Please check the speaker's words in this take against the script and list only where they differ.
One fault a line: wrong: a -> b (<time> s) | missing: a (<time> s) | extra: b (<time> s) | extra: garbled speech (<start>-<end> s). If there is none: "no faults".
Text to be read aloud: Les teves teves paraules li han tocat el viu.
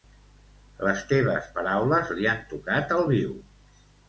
missing: teves (1.5 s)